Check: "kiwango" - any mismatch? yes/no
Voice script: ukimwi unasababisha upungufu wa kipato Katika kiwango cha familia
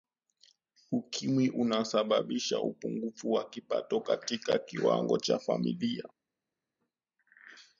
no